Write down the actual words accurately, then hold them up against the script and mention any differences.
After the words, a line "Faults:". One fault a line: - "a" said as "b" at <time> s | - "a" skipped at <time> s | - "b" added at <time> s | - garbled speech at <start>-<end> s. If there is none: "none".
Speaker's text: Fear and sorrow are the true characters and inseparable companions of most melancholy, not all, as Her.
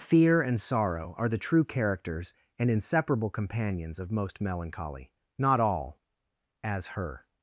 Fear and sorrow are the true characters and inseparable companions of most melancholy, not all, as Her.
Faults:
none